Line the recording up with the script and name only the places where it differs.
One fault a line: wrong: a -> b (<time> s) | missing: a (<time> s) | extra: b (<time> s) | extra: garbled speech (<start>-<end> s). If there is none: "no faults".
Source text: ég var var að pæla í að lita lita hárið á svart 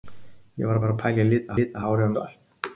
no faults